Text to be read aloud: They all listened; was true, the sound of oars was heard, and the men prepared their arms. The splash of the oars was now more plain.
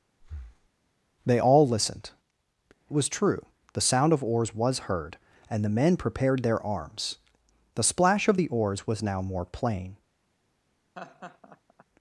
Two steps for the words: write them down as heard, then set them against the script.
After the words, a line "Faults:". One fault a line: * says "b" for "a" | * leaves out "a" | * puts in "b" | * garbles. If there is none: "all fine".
They all listened; was true, the sound of oars was heard, and the men prepared their arms. The splash of the oars was now more plain.
Faults:
all fine